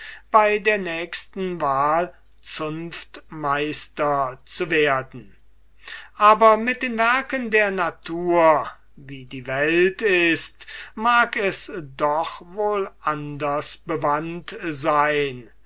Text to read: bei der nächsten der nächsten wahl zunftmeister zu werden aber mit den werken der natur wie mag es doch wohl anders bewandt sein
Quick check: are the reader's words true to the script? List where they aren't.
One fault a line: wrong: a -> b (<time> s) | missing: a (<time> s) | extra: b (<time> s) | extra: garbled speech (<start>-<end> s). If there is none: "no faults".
missing: der nächsten (1.6 s)
extra: die welt ist (9.2 s)